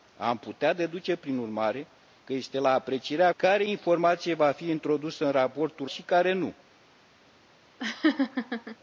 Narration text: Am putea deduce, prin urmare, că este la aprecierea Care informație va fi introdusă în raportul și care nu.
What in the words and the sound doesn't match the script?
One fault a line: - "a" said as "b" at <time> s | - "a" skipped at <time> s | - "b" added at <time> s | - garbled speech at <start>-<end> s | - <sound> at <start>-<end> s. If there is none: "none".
- laugh at 7.8-8.8 s